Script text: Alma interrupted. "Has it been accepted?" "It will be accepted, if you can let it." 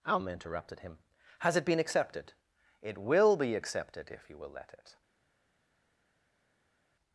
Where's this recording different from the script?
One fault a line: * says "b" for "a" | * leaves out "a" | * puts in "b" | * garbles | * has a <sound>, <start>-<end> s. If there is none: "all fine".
* puts in "him"
* says "will" for "can"